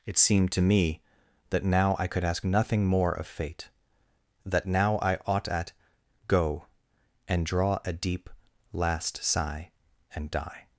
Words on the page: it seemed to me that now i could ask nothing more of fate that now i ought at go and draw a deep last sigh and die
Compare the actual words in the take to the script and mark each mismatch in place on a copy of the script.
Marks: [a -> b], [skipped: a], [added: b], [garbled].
it seemed to me that now i could ask nothing more of fate that now i ought at go and draw a deep last sigh and die